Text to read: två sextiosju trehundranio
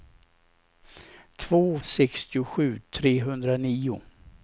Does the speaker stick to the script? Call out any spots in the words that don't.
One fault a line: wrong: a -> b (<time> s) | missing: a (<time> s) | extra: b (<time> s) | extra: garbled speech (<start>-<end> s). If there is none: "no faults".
no faults